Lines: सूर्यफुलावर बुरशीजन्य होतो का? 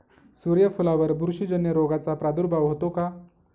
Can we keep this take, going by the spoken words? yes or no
no